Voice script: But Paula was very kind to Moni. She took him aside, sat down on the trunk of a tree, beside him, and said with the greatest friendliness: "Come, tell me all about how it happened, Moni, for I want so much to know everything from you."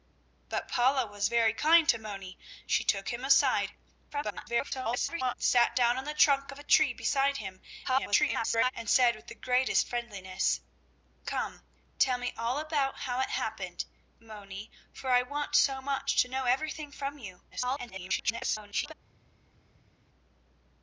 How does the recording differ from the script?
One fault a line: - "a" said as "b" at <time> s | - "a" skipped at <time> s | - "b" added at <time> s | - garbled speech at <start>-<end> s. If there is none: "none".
- garbled speech at 4.1-5.3 s
- garbled speech at 7.8-8.7 s
- garbled speech at 17.5-18.9 s